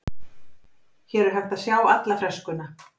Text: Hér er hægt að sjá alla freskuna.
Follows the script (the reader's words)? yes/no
yes